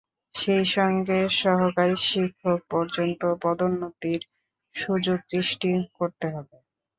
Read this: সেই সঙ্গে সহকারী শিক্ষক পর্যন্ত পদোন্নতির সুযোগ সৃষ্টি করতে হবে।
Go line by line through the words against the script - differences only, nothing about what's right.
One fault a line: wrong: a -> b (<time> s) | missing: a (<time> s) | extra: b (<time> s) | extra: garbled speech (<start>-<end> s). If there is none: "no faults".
no faults